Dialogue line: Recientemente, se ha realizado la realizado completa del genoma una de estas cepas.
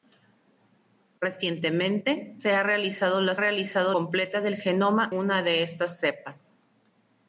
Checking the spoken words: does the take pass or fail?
pass